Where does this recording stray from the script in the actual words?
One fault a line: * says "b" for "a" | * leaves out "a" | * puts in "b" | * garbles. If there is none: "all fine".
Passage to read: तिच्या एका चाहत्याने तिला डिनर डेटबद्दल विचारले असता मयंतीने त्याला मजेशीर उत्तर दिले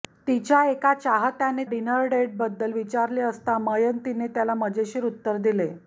* leaves out "तिला"